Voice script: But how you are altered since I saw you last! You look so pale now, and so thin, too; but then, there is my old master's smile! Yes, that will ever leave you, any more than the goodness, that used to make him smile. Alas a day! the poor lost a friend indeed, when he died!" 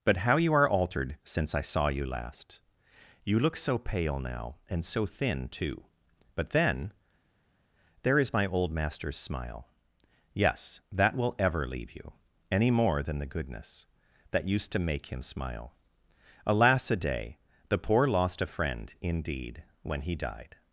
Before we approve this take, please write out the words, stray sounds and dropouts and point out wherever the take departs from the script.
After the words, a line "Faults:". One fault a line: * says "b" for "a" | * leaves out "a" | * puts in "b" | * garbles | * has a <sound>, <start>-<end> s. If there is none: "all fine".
But how you are altered since I saw you last! You look so pale now, and so thin, too; but then, there is my old master's smile! Yes, that will ever leave you, any more than the goodness, that used to make him smile. Alas a day! the poor lost a friend indeed, when he died!"
Faults:
all fine